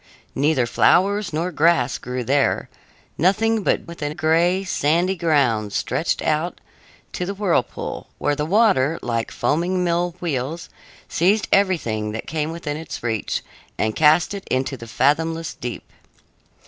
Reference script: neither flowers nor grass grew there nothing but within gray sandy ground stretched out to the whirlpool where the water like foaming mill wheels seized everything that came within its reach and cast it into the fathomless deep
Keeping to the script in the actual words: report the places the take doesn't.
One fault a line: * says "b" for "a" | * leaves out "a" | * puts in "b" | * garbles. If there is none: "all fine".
all fine